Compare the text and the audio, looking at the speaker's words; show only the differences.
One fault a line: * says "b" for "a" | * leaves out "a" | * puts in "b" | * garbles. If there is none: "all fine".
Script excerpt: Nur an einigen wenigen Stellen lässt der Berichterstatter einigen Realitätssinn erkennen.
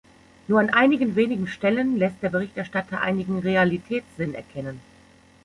all fine